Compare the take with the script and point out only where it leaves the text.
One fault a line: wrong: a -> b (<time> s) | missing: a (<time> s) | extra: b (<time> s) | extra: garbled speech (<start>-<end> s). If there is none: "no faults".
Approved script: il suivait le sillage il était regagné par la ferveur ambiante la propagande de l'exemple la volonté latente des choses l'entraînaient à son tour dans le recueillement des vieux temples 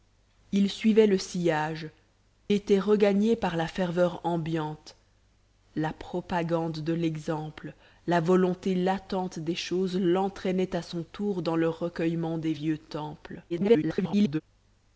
missing: il (1.9 s)
extra: garbled speech (13.5-14.4 s)